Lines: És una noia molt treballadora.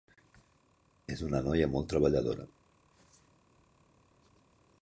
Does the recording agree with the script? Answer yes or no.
yes